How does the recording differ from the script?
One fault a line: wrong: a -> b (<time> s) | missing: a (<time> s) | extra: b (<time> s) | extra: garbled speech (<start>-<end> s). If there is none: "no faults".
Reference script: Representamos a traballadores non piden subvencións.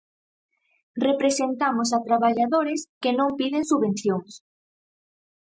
extra: que (3.0 s)